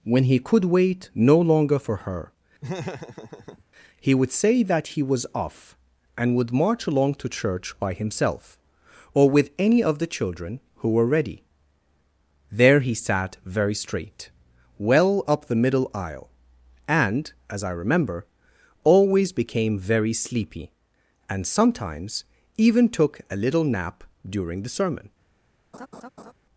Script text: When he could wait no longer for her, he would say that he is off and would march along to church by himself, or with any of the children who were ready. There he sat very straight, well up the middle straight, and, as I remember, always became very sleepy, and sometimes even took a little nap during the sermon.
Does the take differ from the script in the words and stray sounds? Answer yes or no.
yes